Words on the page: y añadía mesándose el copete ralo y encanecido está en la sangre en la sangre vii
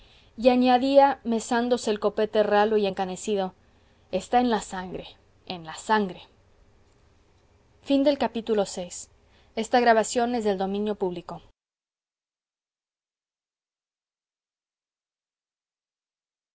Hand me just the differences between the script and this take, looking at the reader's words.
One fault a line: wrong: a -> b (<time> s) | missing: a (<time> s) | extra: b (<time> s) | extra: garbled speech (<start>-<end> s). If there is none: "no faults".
no faults